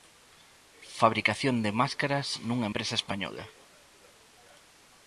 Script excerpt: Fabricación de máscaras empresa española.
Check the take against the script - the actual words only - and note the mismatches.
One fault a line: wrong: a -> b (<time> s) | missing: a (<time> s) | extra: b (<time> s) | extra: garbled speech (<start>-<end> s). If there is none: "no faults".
extra: nunha (2.5 s)